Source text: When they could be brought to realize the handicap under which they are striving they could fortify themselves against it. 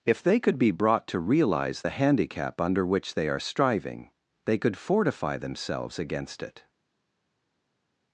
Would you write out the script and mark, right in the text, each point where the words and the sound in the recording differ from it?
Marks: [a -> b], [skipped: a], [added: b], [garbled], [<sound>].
[When -> If] they could be brought to realize the handicap under which they are striving they could fortify themselves against it.